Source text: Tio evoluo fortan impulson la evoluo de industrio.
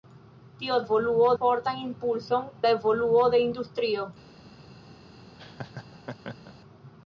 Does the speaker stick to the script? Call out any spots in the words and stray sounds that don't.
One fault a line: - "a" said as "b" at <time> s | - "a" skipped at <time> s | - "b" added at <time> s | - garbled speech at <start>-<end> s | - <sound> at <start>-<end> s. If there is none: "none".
- laugh at 5.4-6.5 s